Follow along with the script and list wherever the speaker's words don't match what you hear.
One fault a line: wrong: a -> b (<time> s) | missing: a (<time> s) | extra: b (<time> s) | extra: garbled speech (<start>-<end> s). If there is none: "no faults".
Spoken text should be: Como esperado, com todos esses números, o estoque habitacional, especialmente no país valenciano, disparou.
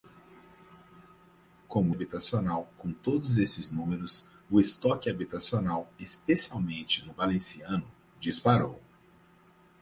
wrong: esperado -> habitacional (1.9 s)
missing: país (7.1 s)